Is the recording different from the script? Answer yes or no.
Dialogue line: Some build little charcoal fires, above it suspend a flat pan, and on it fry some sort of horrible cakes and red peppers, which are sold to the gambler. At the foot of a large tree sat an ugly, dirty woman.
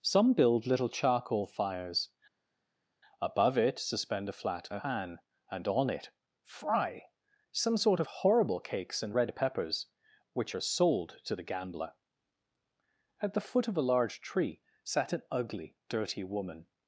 no